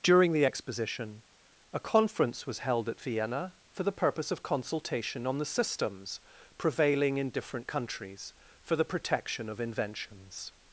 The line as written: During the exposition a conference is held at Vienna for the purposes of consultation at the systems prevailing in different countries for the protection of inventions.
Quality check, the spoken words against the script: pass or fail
fail